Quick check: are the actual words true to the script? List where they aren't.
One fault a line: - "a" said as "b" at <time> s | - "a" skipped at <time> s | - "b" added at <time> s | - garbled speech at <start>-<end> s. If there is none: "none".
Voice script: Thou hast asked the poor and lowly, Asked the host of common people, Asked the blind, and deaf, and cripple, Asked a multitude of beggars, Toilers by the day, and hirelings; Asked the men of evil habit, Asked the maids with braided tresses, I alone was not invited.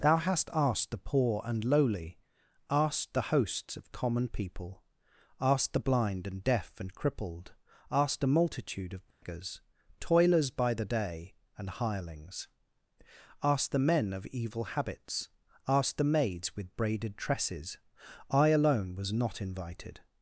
- "host" said as "hosts" at 3.2 s
- "cripple" said as "crippled" at 6.9 s
- "habit" said as "habits" at 14.7 s